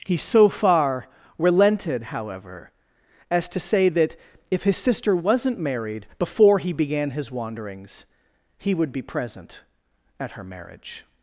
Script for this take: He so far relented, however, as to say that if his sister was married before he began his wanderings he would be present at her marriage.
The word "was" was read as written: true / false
false